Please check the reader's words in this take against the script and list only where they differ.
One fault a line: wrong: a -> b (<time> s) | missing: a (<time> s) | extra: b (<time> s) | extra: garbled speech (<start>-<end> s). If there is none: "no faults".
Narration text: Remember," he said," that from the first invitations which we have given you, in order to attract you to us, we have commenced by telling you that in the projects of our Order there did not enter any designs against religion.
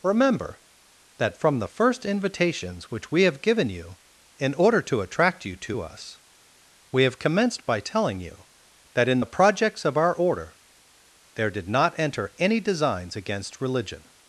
missing: he said (0.6 s)